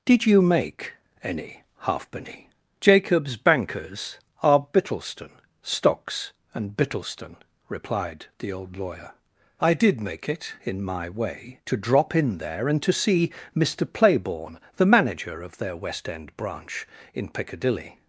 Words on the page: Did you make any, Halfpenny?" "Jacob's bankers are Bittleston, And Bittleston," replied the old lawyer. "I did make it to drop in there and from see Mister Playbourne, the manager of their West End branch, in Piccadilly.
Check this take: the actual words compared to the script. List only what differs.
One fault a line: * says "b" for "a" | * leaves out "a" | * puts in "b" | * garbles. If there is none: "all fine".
* puts in "Stocks"
* puts in "in my way"
* says "to" for "from"